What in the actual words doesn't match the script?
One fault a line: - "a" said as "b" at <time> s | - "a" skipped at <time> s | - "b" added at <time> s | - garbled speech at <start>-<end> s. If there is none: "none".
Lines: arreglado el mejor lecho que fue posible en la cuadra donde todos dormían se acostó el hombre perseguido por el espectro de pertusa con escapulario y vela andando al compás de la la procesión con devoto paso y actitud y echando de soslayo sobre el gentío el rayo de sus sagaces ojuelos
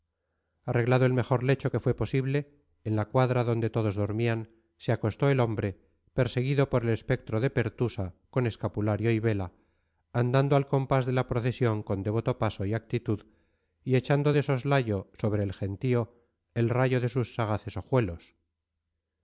- "la" skipped at 11.3 s